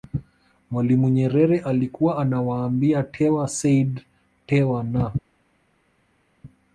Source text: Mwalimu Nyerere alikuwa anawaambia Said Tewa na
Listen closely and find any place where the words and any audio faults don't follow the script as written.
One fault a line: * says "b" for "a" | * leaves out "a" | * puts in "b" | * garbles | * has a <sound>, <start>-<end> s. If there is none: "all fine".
* puts in "Tewa"